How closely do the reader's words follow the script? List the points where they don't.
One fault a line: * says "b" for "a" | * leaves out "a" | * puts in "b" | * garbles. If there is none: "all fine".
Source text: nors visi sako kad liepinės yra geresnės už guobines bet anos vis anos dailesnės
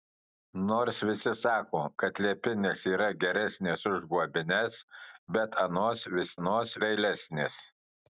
all fine